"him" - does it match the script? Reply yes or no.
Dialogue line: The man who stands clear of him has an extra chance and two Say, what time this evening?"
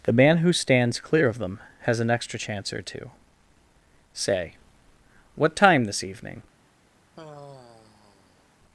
no